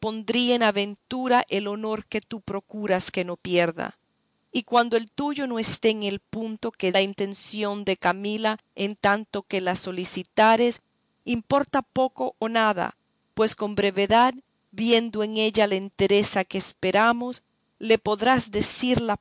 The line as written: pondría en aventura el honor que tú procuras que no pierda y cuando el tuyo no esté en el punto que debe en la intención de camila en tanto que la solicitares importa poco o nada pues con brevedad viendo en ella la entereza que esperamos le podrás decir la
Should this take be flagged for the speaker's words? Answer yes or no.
yes